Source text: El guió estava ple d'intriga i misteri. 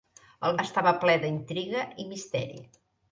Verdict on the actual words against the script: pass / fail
fail